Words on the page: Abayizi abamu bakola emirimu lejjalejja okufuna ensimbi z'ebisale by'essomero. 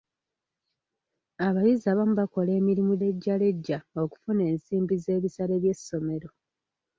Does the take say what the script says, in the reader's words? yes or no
yes